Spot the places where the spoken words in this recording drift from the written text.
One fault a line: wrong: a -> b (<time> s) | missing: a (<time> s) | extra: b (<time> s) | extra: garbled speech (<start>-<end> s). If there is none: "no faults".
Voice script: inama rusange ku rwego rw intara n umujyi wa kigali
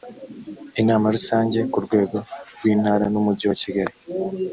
no faults